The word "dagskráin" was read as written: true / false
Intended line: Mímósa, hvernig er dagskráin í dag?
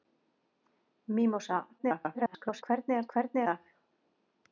false